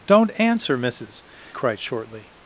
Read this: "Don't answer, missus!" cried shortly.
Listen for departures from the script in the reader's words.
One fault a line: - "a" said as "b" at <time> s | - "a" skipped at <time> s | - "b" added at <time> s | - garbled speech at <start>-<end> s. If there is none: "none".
none